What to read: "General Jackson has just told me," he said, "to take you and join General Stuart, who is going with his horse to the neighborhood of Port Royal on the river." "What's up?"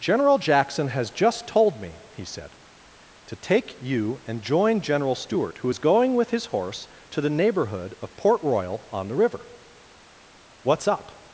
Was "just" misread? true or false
false